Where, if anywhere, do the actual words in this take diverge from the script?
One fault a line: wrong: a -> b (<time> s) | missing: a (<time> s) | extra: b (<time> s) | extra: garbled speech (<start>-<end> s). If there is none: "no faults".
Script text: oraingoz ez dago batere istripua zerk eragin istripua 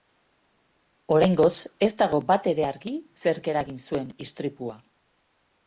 wrong: istripua -> argi (2.7 s)
extra: zuen (3.9 s)